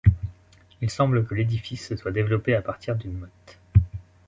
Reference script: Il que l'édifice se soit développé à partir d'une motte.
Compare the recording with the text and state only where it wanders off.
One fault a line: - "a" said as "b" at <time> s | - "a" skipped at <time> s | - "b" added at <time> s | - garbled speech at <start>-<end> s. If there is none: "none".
- "semble" added at 0.8 s